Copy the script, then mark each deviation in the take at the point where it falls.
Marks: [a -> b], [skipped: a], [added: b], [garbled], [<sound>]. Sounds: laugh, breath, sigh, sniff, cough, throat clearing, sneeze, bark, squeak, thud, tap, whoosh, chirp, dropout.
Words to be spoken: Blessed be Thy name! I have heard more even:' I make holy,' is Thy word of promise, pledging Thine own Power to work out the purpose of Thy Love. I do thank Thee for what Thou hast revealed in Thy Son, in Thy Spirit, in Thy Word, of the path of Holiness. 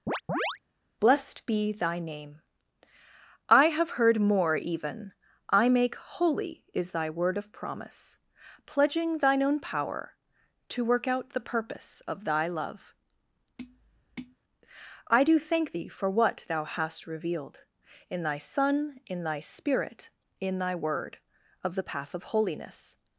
[chirp] Blessed be Thy name! I have heard more even:' I make holy,' is Thy word of promise, pledging Thine own Power to work out the purpose of Thy Love. [tap] I do thank Thee for what Thou hast revealed in Thy Son, in Thy Spirit, in Thy Word, of the path of Holiness.